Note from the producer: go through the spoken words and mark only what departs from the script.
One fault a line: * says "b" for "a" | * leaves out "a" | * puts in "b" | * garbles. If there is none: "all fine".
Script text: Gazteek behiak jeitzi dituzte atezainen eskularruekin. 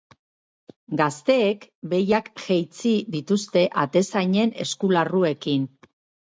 all fine